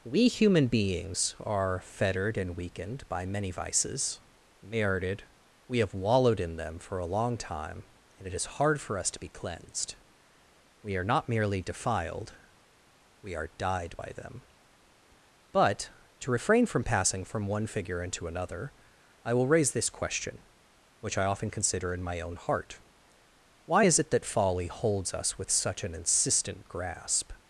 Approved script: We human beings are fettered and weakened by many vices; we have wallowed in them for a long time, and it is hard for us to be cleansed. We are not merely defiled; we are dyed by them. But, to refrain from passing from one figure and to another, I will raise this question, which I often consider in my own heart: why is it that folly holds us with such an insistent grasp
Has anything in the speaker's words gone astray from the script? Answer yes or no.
yes